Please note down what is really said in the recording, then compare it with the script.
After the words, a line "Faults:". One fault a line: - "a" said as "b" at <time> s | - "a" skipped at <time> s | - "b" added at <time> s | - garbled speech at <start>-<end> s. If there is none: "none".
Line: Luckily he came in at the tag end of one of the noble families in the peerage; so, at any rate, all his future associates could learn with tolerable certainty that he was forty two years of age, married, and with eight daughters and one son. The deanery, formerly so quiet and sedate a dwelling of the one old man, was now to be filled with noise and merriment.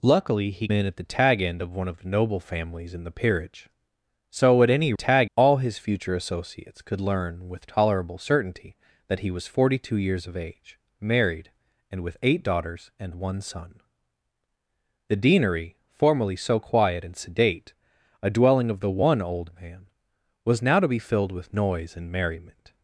Luckily he in at the tag end of one of the noble families in the peerage; so, at any tag, all his future associates could learn with tolerable certainty that he was forty two years of age, married, and with eight daughters and one son. The deanery, formerly so quiet and sedate a dwelling of the one old man, was now to be filled with noise and merriment.
Faults:
- "came" skipped at 0.7 s
- "rate" said as "tag" at 4.9 s